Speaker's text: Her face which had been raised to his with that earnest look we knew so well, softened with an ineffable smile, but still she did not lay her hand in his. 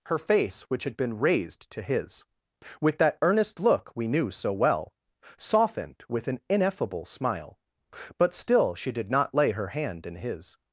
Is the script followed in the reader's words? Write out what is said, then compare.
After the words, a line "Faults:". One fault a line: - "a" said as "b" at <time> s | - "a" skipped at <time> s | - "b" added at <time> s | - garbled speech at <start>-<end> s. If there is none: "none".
Her face which had been raised to his with that earnest look we knew so well, softened with an ineffable smile, but still she did not lay her hand in his.
Faults:
none